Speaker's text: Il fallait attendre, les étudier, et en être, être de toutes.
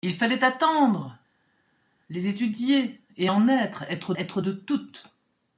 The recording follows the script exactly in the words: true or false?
false